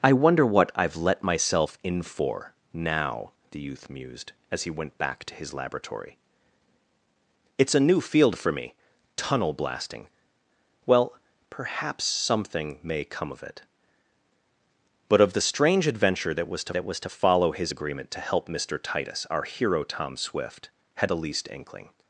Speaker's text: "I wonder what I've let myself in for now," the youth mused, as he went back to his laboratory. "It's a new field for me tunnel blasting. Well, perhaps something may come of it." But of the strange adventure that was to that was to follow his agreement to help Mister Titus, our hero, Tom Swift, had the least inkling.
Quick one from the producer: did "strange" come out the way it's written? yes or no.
yes